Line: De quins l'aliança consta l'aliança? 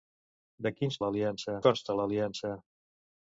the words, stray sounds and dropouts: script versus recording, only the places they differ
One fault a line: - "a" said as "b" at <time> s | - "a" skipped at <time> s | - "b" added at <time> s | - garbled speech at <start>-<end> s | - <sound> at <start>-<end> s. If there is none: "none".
none